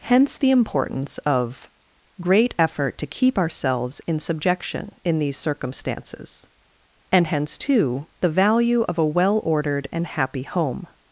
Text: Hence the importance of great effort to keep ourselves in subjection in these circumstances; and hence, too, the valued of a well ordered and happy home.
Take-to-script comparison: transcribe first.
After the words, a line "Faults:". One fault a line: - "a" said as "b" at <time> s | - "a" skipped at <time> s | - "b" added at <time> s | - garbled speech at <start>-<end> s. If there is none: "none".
Hence the importance of great effort to keep ourselves in subjection in these circumstances; and hence, too, the value of a well ordered and happy home.
Faults:
- "valued" said as "value" at 8.3 s